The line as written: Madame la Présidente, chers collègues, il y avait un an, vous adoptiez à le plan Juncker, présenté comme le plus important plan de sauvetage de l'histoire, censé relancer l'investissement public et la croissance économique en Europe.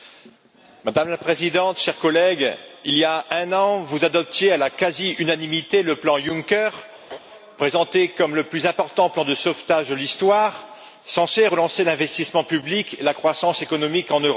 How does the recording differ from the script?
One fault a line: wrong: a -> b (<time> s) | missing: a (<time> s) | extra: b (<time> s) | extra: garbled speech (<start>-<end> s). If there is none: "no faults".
wrong: avait -> a (3.0 s)
extra: la quasi unanimité (4.6 s)